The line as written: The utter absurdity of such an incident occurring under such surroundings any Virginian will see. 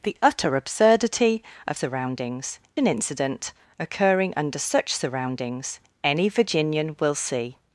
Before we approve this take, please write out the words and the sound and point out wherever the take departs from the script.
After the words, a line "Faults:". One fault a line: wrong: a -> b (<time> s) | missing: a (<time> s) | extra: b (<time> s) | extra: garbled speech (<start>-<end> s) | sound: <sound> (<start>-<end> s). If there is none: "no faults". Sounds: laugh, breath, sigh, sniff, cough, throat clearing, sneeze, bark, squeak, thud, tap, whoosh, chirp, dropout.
The utter absurdity of surroundings an incident occurring under such surroundings any Virginian will see.
Faults:
wrong: such -> surroundings (1.7 s)